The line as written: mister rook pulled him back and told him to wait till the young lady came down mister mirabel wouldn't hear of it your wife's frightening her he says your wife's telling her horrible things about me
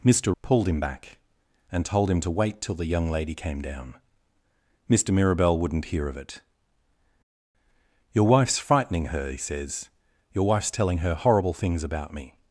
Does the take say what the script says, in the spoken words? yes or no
no